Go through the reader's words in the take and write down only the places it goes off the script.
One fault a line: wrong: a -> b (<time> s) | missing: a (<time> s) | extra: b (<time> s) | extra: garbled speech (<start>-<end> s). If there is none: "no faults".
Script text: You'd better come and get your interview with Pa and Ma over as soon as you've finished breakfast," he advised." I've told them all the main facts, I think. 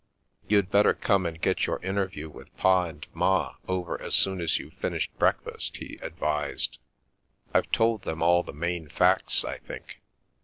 no faults